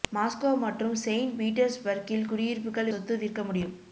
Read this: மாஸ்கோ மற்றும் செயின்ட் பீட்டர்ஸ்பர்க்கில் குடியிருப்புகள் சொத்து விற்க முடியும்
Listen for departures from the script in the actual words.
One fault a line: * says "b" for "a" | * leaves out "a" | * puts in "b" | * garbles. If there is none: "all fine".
all fine